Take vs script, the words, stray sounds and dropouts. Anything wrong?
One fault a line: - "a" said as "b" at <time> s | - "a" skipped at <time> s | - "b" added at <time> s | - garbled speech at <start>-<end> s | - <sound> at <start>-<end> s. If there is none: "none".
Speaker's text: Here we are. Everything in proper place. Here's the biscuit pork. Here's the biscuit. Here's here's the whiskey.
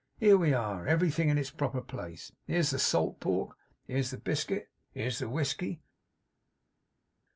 - "its" added at 1.4 s
- "biscuit" said as "salt" at 2.8 s
- "here's" skipped at 5.2 s